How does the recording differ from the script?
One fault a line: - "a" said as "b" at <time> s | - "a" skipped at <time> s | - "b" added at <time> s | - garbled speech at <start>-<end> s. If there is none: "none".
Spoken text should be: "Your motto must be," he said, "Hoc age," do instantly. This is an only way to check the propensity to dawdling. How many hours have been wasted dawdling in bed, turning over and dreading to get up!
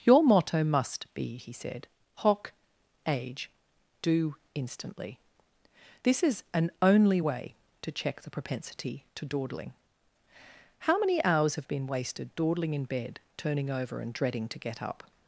none